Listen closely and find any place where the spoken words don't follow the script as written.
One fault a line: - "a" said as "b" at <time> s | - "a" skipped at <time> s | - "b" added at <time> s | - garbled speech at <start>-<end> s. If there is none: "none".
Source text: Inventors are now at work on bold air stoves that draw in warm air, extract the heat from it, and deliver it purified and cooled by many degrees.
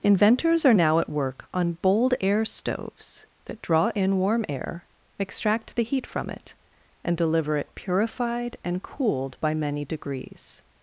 none